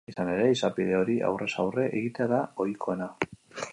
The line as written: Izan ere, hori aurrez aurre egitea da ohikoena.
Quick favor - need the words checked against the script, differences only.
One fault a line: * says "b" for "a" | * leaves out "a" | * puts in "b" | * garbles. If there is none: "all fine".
* puts in "izapide"